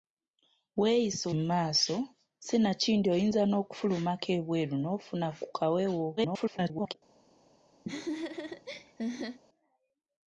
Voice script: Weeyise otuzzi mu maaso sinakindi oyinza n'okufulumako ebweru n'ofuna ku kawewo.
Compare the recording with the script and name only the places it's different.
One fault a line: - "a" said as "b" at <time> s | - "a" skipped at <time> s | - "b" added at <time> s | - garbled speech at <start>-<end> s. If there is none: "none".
- "otuzzi" skipped at 1.2 s
- garbled speech at 6.2-6.9 s